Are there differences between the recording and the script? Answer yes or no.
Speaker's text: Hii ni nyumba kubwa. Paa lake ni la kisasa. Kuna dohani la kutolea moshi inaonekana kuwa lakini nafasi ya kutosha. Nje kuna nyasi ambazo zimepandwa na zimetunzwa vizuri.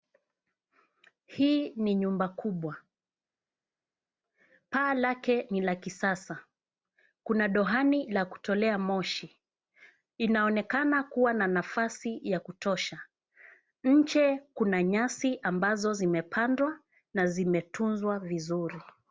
yes